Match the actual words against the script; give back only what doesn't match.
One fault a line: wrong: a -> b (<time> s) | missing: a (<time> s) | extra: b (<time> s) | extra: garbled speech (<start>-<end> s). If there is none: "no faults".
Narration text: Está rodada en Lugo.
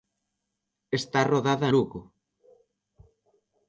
missing: en (1.7 s)